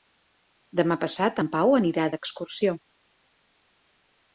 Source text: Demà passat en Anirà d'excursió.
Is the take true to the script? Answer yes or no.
no